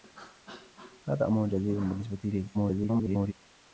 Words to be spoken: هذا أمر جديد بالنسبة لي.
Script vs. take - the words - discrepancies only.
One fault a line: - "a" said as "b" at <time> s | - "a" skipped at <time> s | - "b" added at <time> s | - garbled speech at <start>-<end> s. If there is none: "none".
- garbled speech at 2.5-3.3 s